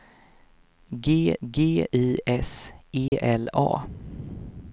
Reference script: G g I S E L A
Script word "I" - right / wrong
right